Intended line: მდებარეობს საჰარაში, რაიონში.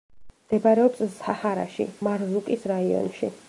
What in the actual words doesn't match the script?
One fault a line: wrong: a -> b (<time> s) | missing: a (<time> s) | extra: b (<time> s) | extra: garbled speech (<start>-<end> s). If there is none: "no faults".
extra: მარზუკის (2.1 s)